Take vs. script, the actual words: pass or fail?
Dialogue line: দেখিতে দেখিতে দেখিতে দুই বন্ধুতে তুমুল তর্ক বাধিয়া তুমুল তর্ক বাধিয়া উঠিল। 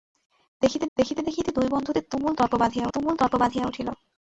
pass